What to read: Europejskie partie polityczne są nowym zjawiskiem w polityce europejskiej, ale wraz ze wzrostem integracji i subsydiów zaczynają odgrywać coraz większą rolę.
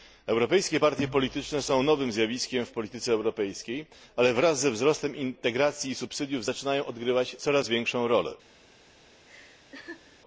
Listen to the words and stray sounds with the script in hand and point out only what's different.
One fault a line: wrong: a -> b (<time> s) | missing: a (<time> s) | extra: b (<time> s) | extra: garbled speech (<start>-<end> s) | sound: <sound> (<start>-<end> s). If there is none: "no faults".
sound: laugh (9.3-10.2 s)